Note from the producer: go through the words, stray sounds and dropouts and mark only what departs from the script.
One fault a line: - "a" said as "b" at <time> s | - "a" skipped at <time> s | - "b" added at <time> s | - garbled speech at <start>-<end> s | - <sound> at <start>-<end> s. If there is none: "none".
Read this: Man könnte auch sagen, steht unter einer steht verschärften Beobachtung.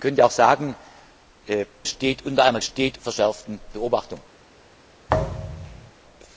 - thud at 5.1-5.9 s